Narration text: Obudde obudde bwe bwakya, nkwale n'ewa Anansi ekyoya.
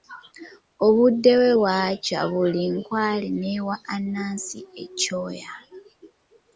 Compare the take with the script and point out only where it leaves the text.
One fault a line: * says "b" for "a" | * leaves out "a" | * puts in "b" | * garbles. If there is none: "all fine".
* leaves out "obudde"
* puts in "buli"